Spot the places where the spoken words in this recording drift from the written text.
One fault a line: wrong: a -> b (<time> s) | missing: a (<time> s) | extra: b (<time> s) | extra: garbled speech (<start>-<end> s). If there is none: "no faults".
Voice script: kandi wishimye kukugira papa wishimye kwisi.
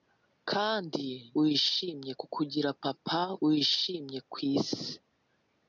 no faults